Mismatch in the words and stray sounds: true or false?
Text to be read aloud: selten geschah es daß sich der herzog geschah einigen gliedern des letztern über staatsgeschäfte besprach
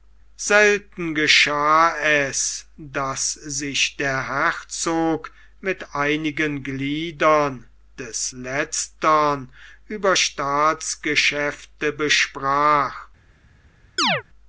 true